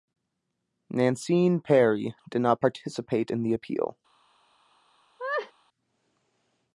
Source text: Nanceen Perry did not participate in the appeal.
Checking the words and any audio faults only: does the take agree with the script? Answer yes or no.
no